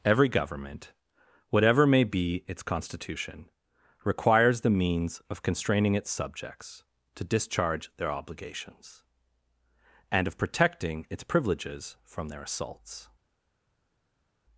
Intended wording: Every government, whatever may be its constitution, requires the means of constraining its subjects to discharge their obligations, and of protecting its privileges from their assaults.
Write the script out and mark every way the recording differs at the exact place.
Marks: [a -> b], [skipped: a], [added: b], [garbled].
Every government, whatever may be its constitution, requires the means of constraining its subjects to discharge their obligations, and of protecting its privileges from their assaults.